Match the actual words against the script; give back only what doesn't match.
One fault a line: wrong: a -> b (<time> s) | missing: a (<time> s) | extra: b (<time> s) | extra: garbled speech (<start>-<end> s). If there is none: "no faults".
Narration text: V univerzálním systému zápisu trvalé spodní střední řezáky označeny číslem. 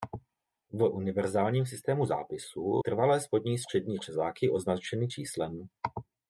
no faults